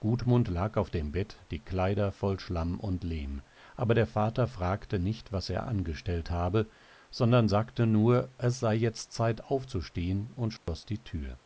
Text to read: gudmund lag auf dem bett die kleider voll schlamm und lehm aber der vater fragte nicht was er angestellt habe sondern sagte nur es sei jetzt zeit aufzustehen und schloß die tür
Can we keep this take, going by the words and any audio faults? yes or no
no